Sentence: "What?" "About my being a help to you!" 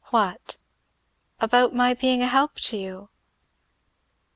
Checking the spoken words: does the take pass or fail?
pass